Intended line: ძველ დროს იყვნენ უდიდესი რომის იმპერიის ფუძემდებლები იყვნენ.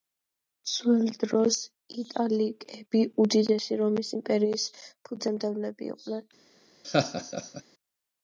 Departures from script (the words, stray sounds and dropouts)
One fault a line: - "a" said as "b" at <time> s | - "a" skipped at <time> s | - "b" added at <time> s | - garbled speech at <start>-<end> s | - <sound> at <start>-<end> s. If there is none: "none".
- "იყვნენ" said as "იტალიკები" at 2.0 s
- laugh at 6.8-7.6 s